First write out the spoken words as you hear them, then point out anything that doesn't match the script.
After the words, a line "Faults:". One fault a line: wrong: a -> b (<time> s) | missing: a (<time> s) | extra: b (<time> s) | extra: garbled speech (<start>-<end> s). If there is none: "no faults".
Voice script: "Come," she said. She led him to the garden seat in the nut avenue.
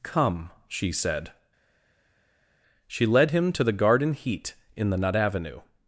"Come," she said. She led him to the garden heat in the nut avenue.
Faults:
wrong: seat -> heat (4.1 s)